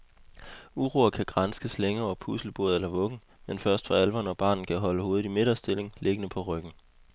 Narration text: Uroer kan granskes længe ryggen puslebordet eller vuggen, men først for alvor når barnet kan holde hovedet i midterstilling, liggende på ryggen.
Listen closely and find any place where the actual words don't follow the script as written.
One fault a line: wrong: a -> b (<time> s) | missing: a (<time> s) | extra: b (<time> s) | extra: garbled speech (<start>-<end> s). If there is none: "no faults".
wrong: ryggen -> over (2.0 s)